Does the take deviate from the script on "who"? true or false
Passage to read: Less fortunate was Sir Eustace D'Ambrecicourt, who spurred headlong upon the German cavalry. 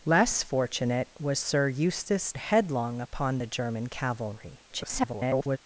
true